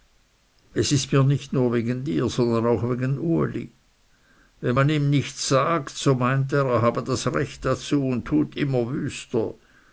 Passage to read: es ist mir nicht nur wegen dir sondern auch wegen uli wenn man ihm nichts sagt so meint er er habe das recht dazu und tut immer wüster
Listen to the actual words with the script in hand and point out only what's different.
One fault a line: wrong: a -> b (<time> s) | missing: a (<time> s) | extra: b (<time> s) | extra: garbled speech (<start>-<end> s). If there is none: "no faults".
no faults